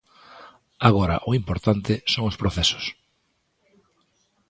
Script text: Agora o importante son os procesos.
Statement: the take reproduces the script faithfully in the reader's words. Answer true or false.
true